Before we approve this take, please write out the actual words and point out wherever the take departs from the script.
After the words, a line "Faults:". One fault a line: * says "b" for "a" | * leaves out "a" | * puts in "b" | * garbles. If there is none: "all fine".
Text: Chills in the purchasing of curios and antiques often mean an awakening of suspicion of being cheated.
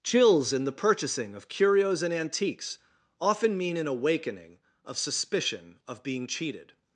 Chills in the purchasing of curios and antiques often mean an awakening of suspicion of being cheated.
Faults:
all fine